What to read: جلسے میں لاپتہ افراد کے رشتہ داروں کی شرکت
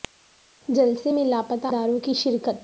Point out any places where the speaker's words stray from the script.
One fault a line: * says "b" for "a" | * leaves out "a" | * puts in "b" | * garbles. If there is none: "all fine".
* leaves out "افراد کے رشتہ"